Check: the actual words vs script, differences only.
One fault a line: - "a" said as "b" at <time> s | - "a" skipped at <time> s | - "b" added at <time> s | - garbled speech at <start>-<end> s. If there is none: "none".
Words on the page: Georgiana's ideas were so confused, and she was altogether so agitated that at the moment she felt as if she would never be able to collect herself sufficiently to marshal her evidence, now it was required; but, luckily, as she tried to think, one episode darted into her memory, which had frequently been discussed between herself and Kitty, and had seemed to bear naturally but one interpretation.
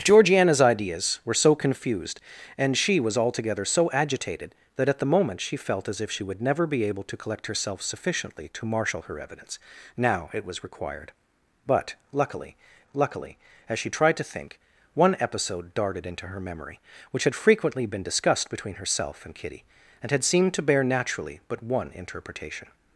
- "luckily" added at 12.9 s